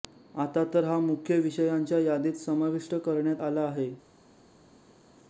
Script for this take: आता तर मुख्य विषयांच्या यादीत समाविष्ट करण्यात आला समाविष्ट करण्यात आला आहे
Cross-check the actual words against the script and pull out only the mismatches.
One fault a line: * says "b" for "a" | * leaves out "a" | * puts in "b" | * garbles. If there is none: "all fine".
* puts in "हा"
* leaves out "समाविष्ट करण्यात आला"